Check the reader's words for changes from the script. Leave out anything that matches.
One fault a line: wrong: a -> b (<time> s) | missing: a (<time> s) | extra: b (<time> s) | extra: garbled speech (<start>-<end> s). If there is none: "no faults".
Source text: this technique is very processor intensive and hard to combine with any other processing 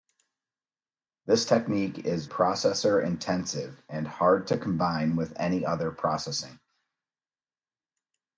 missing: very (2.2 s)